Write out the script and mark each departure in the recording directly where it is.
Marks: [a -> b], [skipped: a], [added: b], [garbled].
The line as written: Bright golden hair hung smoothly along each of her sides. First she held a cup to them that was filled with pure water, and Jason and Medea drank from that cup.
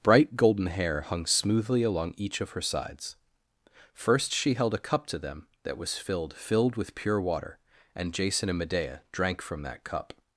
Bright golden hair hung smoothly along each of her sides. First she held a cup to them that was filled [added: filled] with pure water, and Jason and Medea drank from that cup.